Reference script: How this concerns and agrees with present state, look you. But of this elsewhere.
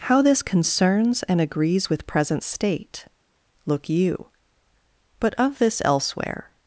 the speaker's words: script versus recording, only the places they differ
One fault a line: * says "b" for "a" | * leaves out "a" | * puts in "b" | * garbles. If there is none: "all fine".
all fine